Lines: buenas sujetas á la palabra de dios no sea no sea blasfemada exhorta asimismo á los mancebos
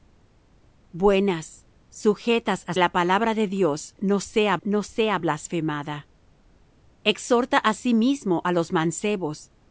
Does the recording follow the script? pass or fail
pass